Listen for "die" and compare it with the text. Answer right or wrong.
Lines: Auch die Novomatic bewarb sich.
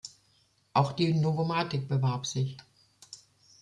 right